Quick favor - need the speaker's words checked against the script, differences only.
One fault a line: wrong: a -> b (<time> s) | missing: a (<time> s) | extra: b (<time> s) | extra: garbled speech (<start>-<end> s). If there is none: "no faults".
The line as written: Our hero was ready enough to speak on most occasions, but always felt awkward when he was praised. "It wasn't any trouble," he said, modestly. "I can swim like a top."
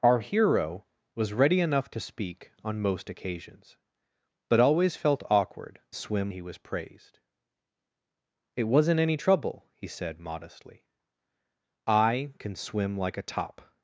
wrong: when -> swim (5.9 s)